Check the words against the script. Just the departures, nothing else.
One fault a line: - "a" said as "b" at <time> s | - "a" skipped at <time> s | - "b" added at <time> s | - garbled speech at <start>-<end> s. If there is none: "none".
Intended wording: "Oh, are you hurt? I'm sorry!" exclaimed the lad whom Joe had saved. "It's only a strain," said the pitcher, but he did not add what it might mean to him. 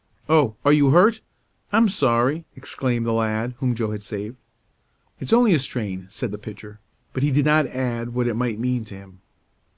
none